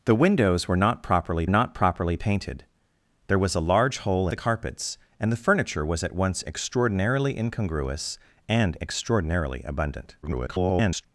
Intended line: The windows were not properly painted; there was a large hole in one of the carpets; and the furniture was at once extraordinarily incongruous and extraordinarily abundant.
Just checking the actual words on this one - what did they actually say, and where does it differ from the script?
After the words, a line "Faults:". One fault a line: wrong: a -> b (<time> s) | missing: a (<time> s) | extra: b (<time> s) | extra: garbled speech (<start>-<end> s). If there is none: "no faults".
The windows were not properly not properly painted; there was a large hole the carpets; and the furniture was at once extraordinarily incongruous and extraordinarily abundant. [garbled]
Faults:
extra: not properly (1.5 s)
missing: in one of (4.3 s)
extra: garbled speech (10.2-11.0 s)